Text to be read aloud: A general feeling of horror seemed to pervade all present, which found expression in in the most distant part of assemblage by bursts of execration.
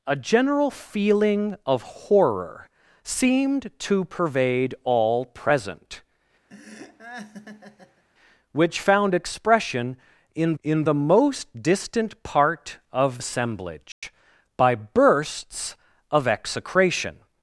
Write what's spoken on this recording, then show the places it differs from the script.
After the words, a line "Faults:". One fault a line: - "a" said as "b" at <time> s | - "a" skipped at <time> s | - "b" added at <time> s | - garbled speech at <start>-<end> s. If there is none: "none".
A general feeling of horror seemed to pervade all present, which found expression in in the most distant part of assemblage by bursts of execration.
Faults:
none